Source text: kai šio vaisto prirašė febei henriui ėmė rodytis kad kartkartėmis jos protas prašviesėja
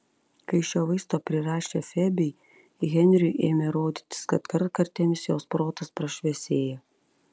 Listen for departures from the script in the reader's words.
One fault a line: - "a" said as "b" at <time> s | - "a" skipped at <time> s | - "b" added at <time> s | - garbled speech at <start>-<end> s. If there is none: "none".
none